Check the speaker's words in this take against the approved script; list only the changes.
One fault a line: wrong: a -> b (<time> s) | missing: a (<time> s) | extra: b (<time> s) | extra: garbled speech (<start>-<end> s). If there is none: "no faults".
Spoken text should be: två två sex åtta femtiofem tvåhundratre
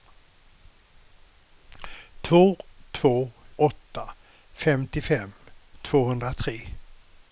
missing: sex (3.3 s)